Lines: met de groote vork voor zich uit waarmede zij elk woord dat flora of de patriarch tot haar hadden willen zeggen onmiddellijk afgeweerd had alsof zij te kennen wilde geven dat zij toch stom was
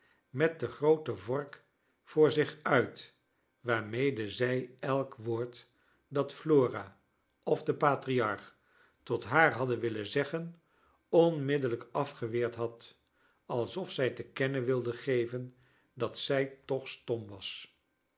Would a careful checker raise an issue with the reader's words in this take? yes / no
no